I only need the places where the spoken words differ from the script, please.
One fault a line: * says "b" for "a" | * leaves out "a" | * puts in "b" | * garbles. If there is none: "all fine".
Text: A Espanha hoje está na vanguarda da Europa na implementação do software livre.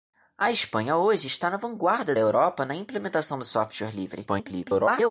* leaves out "da"
* garbles